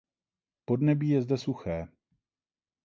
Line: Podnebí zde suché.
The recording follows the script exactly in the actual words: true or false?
false